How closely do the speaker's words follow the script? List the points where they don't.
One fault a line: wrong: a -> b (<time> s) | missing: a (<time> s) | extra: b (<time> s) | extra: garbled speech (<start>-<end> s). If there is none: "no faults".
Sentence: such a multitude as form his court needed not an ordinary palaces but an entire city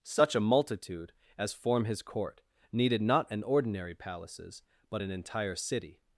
no faults